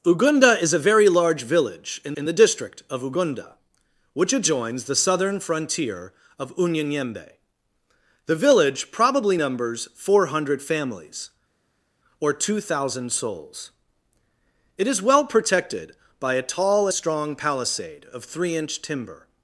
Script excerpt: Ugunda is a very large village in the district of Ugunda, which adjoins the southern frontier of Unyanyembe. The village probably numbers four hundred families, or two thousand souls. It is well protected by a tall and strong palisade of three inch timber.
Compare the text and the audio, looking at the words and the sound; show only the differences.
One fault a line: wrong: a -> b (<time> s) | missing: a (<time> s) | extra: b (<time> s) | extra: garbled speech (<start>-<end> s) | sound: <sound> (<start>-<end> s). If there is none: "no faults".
extra: in (2.1 s)
missing: and (16.9 s)